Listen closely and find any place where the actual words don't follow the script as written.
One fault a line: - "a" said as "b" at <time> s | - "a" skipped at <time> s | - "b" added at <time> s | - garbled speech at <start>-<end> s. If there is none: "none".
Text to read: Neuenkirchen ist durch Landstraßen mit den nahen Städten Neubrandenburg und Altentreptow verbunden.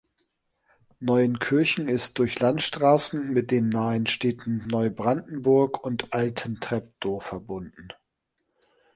none